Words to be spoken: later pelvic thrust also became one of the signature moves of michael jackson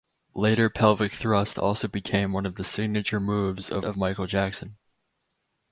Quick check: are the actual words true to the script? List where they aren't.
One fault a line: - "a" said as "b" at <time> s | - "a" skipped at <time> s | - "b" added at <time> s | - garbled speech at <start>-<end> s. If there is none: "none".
- "of" added at 3.8 s